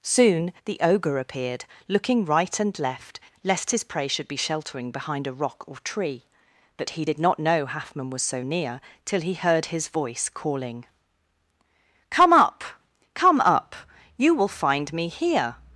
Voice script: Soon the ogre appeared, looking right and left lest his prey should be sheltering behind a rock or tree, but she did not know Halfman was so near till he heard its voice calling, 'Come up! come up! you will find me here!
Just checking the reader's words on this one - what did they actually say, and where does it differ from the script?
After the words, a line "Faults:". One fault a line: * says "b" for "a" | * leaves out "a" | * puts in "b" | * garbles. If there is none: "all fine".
Soon the ogre appeared, looking right and left lest his prey should be sheltering behind a rock or tree, but he did not know Halfman was so near till he heard his voice calling, 'Come up! come up! you will find me here!
Faults:
* says "he" for "she"
* says "his" for "its"